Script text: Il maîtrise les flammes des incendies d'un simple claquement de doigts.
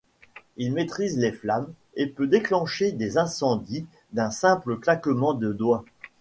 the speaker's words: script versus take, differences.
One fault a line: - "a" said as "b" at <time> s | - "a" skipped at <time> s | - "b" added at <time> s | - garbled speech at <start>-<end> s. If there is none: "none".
- "et peut déclencher" added at 1.9 s